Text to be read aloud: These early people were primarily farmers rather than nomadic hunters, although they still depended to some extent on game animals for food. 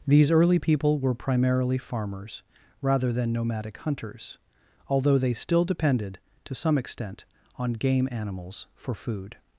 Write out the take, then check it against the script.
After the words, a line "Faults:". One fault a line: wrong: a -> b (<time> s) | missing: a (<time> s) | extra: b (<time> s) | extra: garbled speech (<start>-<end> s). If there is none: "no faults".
These early people were primarily farmers rather than nomadic hunters, although they still depended to some extent on game animals for food.
Faults:
no faults